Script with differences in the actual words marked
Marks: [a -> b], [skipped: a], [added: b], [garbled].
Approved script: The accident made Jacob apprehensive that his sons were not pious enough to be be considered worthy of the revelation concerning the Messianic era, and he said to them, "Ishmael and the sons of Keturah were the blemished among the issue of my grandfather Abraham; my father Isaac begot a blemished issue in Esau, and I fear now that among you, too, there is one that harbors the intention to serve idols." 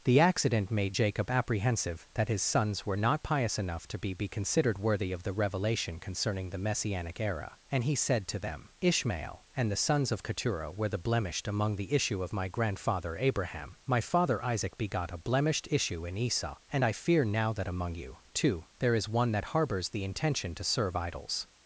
The accident made Jacob apprehensive that his sons were not pious enough to be be considered worthy of the revelation concerning the Messianic era, and he said to them, "Ishmael and the sons of Keturah were the blemished among the issue of my grandfather Abraham; my father Isaac begot a blemished issue in Esau, and I fear now that among you, too, there is one that harbors the intention to serve idols."